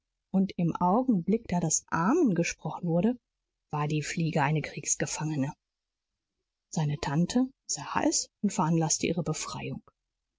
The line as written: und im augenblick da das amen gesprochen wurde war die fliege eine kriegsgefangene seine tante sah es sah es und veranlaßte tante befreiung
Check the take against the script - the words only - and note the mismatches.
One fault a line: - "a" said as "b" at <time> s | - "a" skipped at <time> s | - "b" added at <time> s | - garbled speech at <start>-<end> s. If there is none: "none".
- "sah es" skipped at 8.3 s
- "tante" said as "ihre" at 9.1 s